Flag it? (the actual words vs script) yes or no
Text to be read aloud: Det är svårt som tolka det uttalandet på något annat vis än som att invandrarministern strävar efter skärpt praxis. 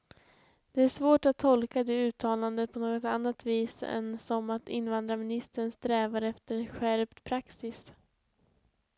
yes